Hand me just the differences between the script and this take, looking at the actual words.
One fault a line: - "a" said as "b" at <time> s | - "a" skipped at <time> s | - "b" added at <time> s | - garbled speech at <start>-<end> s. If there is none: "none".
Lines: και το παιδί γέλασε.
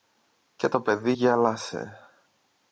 none